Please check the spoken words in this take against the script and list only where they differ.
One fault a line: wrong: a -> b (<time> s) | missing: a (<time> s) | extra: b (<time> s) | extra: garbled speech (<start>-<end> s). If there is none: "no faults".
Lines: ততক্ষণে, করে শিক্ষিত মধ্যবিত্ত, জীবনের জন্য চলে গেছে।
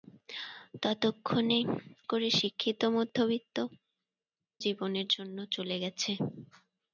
no faults